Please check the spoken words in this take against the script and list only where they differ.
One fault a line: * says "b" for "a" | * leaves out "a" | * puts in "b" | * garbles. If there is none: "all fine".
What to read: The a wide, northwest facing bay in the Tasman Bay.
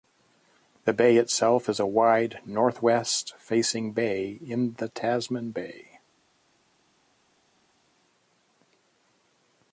* puts in "bay itself is"